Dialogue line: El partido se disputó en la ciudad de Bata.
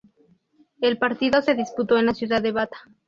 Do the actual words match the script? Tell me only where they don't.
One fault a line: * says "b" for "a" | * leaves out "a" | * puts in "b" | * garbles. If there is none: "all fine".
all fine